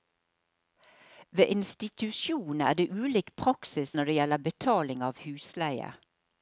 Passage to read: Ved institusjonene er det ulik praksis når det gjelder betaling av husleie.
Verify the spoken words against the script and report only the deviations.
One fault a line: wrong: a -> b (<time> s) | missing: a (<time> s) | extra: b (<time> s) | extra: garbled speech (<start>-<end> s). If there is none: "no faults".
no faults